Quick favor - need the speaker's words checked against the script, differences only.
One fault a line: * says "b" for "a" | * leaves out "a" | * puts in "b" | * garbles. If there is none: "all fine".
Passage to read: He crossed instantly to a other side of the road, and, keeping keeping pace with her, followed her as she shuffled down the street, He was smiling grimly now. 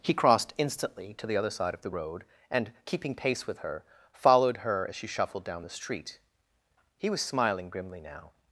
* says "the" for "a"
* leaves out "keeping"